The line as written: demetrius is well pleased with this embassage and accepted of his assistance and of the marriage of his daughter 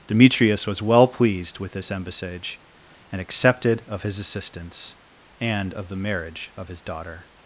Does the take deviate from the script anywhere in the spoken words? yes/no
yes